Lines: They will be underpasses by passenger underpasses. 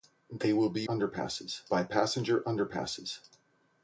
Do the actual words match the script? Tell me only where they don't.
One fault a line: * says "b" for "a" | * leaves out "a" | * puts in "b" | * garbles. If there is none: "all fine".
all fine